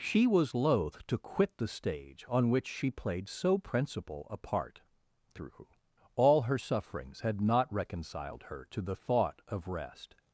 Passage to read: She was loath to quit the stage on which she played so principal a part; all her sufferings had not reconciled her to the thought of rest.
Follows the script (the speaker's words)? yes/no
no